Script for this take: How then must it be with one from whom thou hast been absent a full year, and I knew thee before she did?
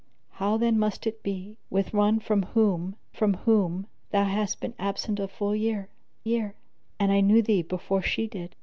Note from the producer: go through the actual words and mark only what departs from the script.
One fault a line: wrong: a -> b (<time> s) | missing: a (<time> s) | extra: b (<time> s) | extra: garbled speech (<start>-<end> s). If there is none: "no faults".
extra: from whom (3.1 s)
extra: year (6.2 s)